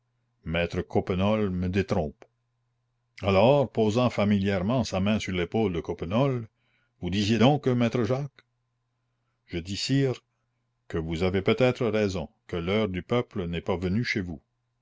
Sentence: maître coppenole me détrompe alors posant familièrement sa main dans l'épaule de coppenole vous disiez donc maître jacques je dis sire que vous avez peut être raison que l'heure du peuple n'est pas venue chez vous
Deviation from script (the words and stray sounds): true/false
true